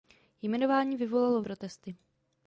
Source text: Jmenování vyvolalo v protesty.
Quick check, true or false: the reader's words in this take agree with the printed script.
true